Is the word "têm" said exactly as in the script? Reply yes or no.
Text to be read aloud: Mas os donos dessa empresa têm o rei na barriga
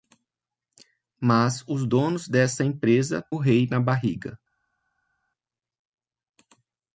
no